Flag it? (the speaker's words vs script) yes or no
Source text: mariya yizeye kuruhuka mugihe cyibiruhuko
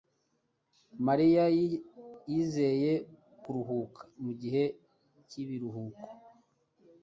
no